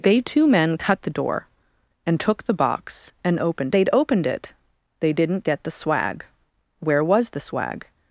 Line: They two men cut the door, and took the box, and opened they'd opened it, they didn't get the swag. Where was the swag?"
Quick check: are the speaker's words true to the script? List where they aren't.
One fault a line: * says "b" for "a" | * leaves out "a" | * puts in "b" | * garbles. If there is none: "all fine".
all fine